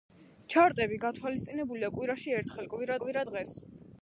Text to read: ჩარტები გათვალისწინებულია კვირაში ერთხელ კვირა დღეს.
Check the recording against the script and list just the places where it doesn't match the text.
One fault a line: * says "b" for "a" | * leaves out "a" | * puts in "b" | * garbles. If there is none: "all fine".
* puts in "კვირა"